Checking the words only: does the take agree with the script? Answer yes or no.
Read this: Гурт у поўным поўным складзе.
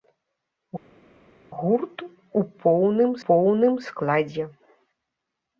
yes